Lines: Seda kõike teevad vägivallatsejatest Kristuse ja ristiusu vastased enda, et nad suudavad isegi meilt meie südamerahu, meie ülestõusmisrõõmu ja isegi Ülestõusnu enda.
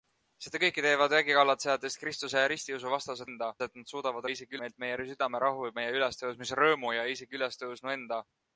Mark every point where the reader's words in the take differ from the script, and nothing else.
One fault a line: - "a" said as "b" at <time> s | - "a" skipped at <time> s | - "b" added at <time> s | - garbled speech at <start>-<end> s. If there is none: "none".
none